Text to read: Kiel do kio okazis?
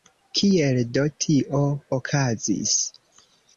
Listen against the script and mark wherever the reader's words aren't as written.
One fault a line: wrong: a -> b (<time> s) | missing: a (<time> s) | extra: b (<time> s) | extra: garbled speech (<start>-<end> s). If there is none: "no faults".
wrong: kio -> tio (1.2 s)